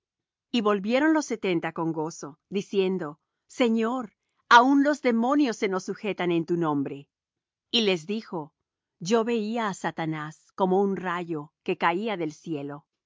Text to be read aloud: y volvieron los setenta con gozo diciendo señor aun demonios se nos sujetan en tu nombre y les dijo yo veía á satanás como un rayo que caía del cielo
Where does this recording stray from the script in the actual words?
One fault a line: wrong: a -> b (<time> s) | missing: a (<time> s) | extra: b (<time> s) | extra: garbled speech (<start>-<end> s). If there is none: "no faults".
extra: los (4.8 s)